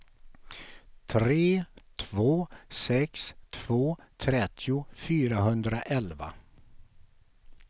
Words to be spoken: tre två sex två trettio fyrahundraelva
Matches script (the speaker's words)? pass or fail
pass